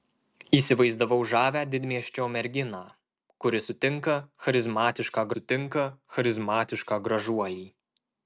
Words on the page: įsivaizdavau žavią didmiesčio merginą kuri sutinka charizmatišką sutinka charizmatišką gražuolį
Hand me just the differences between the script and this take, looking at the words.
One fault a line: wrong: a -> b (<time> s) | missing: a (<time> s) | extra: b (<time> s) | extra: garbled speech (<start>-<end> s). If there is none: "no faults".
no faults